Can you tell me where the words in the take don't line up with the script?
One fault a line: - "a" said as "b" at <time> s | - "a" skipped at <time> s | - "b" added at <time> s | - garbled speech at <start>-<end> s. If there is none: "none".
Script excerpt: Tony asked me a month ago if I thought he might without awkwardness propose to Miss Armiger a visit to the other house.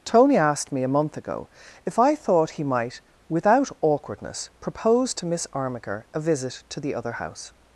none